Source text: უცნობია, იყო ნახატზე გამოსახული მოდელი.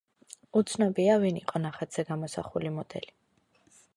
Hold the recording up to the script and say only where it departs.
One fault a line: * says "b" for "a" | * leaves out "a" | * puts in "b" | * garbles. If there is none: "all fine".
* puts in "ვინ"